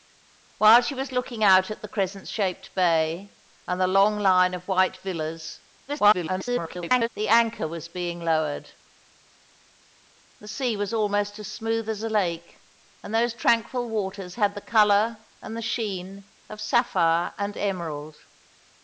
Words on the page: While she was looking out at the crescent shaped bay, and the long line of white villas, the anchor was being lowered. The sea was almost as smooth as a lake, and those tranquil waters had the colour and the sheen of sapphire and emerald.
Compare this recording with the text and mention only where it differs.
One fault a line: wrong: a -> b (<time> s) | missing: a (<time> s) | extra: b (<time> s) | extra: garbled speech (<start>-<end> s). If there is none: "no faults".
extra: garbled speech (5.9-7.1 s)